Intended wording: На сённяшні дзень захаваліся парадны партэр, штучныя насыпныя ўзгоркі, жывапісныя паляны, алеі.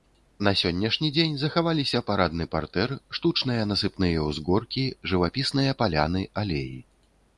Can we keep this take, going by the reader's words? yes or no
yes